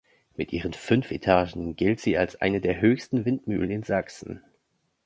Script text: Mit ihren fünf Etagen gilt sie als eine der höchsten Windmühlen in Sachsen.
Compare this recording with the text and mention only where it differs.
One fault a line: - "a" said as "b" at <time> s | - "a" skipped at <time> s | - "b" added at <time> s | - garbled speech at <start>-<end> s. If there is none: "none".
none